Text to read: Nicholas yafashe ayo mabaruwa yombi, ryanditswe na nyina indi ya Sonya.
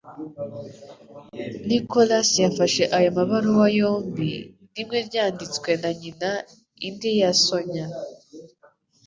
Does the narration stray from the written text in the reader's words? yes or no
yes